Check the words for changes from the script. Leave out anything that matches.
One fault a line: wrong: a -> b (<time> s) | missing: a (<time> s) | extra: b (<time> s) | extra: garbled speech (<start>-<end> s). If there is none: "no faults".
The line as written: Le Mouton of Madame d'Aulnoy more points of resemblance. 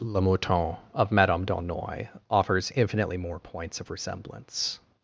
extra: offers infinitely (2.3 s)